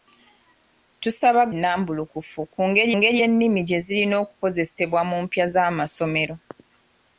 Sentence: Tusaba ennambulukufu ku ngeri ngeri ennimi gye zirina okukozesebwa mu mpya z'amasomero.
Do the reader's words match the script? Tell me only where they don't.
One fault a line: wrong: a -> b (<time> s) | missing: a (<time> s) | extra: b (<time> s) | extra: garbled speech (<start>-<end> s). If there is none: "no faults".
no faults